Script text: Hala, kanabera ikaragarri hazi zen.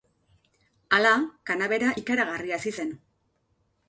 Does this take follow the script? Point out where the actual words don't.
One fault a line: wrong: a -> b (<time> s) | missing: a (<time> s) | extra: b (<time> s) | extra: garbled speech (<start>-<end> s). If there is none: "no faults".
no faults